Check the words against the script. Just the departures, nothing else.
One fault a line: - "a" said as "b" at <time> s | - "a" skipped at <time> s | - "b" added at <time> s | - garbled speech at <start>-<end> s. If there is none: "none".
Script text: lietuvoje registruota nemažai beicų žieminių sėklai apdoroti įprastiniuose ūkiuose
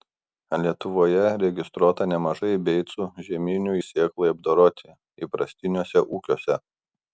none